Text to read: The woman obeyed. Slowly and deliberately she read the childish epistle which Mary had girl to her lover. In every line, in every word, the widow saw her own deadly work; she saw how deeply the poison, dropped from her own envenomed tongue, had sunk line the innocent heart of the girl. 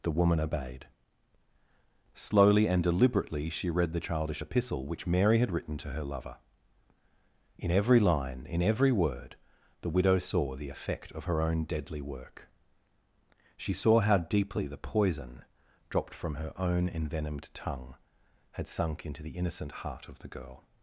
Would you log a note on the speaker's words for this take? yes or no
yes